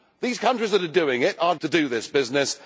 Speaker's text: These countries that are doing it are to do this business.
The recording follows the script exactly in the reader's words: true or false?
true